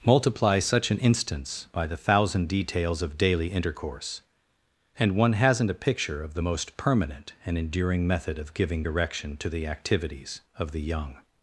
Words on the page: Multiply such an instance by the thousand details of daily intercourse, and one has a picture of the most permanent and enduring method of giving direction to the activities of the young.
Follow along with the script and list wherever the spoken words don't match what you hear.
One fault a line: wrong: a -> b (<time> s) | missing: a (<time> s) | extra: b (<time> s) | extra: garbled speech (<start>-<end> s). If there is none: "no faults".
wrong: has -> hasn't (5.3 s)